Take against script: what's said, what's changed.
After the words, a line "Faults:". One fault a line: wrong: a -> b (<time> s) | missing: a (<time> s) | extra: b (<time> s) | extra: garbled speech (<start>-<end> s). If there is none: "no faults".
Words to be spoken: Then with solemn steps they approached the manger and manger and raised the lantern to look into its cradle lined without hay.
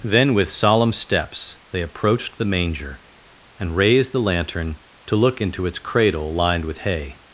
Then with solemn steps they approached the manger and raised the lantern to look into its cradle lined with hay.
Faults:
missing: manger and (3.8 s)
wrong: without -> with (6.7 s)